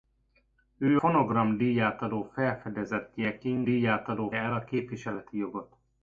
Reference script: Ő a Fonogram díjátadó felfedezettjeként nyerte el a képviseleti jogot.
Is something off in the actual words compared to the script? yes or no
yes